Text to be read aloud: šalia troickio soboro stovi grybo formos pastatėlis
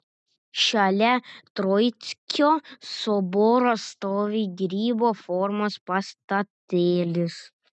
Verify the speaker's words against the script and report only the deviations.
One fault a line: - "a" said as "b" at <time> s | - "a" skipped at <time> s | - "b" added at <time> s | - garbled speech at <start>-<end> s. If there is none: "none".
none